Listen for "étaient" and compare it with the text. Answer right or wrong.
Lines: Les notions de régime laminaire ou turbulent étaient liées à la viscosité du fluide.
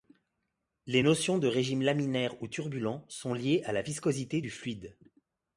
wrong